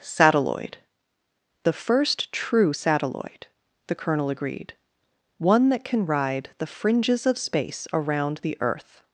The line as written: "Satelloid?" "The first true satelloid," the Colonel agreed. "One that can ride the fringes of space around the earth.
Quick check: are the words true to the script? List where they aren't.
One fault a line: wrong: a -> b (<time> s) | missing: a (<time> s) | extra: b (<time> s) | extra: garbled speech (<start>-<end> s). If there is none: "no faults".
no faults